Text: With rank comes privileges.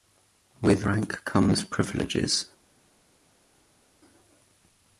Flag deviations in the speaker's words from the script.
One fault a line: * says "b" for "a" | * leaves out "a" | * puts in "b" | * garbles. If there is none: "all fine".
all fine